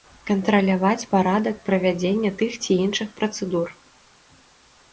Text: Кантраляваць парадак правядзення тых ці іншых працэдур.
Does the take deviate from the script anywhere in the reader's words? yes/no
no